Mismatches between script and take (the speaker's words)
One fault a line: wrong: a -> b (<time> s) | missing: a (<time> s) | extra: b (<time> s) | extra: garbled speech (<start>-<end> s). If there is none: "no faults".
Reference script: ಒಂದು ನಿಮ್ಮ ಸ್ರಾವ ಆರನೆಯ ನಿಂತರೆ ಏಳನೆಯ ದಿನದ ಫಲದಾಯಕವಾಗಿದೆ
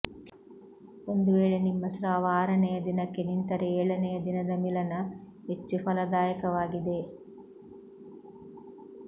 extra: ವೇಳೆ (1.4 s)
extra: ದಿನಕ್ಕೆ (2.8 s)
extra: ಮಿಲನ ಹೆಚ್ಚು (4.6 s)